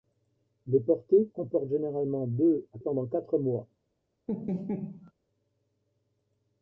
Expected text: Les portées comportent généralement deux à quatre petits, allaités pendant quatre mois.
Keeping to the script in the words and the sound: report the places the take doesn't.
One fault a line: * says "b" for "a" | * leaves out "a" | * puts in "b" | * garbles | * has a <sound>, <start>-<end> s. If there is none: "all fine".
* leaves out "quatre petits allaités"
* has a laugh, 4.3-5.1 s